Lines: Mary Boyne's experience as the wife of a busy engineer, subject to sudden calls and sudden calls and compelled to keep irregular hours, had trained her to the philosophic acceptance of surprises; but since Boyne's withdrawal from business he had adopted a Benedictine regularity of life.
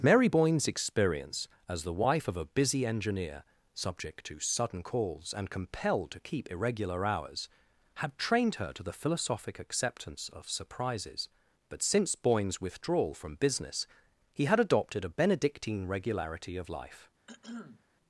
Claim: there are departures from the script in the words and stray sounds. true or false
true